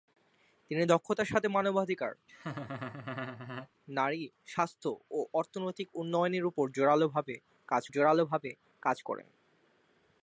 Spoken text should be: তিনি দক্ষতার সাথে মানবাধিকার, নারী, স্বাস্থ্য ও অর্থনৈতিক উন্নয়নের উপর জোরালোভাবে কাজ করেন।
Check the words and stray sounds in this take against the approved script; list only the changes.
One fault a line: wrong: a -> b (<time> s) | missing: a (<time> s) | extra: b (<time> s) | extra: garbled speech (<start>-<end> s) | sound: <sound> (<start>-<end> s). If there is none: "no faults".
sound: laugh (2.3-3.7 s)
extra: জোরালোভাবে কাজ (7.9 s)